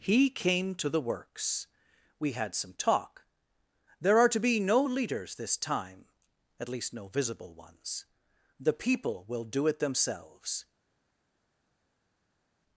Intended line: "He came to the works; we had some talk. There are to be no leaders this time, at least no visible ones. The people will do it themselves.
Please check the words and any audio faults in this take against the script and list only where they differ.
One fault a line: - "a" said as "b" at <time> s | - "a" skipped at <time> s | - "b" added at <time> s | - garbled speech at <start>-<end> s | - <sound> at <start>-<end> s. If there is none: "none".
none